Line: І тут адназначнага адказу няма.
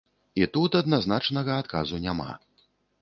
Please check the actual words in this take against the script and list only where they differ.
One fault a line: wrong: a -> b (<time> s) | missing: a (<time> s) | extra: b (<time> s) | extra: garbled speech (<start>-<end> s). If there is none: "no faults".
no faults